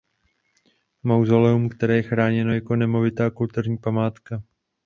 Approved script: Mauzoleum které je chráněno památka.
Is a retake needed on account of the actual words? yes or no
yes